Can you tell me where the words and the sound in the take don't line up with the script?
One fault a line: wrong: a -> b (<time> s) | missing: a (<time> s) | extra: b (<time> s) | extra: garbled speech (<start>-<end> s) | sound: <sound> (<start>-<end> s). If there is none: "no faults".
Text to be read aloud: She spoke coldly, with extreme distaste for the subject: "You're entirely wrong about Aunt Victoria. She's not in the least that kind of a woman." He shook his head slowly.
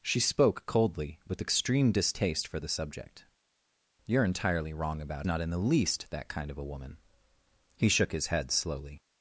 missing: Aunt Victoria She's (5.3 s)